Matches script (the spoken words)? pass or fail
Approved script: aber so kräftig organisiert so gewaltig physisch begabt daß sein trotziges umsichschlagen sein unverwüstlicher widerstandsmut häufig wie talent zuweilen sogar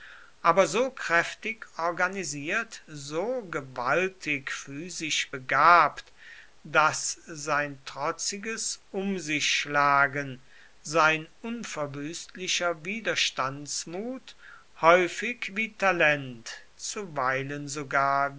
pass